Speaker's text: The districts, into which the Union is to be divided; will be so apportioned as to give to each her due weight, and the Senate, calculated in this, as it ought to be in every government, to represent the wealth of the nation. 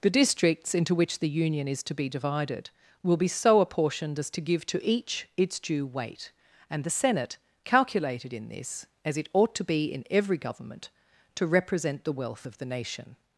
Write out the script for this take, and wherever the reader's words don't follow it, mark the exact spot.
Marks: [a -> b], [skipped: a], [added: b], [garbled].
The districts, into which the Union is to be divided; will be so apportioned as to give to each [her -> its] due weight, and the Senate, calculated in this, as it ought to be in every government, to represent the wealth of the nation.